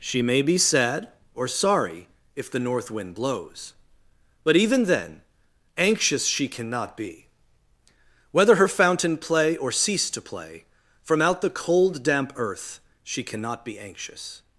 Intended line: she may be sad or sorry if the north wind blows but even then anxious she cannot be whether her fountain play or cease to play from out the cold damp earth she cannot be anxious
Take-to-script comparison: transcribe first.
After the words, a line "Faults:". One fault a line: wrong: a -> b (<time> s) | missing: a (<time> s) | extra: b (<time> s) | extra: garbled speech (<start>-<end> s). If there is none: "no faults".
she may be sad or sorry if the north wind blows but even then anxious she cannot be whether her fountain play or cease to play from out the cold damp earth she cannot be anxious
Faults:
no faults